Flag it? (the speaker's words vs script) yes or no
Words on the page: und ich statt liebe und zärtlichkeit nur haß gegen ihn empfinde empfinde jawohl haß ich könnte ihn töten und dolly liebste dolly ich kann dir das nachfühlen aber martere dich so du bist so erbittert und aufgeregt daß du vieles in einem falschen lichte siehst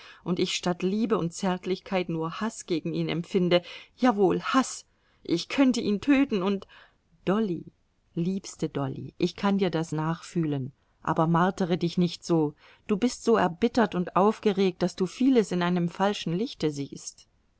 yes